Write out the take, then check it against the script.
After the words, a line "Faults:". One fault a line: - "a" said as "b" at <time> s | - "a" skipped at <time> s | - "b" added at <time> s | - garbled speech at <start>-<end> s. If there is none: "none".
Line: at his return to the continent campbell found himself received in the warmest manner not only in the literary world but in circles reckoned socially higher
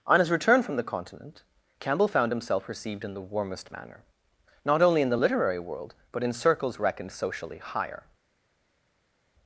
on his return from the continent campbell found himself received in the warmest manner not only in the literary world but in circles reckoned socially higher
Faults:
- "at" said as "on" at 0.1 s
- "to" said as "from" at 0.6 s